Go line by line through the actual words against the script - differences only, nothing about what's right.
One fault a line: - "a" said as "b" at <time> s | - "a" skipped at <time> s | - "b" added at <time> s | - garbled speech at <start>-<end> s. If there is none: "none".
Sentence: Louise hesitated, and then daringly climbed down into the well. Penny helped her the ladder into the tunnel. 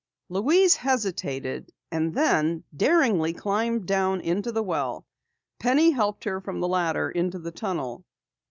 - "from" added at 6.4 s